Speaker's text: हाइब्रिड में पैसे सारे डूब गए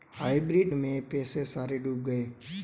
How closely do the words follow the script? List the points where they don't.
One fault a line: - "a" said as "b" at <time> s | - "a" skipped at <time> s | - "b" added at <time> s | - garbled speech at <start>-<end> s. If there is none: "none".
none